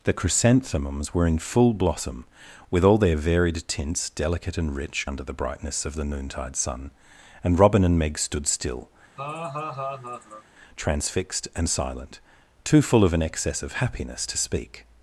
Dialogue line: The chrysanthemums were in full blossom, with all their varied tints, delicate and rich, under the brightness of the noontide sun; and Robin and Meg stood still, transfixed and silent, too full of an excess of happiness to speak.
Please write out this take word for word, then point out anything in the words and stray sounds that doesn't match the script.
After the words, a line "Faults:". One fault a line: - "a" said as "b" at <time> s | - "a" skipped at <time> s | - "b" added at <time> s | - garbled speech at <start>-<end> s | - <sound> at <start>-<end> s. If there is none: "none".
The chrysanthemums were in full blossom, with all their varied tints, delicate and rich, under the brightness of the noontide sun; and Robin and Meg stood still, transfixed and silent, too full of an excess of happiness to speak.
Faults:
- laugh at 9.2-10.4 s